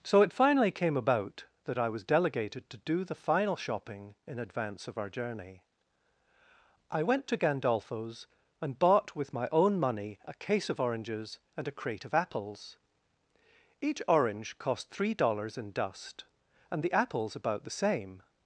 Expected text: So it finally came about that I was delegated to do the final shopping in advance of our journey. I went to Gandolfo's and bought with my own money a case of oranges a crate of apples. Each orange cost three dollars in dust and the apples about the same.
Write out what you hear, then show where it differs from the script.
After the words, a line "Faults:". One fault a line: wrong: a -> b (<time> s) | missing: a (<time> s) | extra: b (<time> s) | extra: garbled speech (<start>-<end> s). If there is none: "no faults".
So it finally came about that I was delegated to do the final shopping in advance of our journey. I went to Gandolfo's and bought with my own money a case of oranges and a crate of apples. Each orange cost three dollars in dust and the apples about the same.
Faults:
extra: and (11.6 s)